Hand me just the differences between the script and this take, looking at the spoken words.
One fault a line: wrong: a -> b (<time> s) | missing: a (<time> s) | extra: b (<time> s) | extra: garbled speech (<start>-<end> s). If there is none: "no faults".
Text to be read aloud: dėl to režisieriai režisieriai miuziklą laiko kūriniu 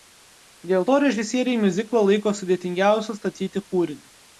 missing: režisieriai (1.6 s)
extra: sudėtingiausiu statyti (2.4 s)